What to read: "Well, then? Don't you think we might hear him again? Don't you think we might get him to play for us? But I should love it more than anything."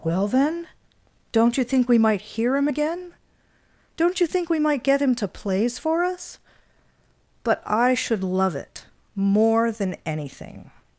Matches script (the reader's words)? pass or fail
fail